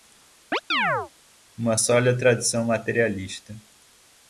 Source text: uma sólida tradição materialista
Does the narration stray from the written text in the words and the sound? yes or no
yes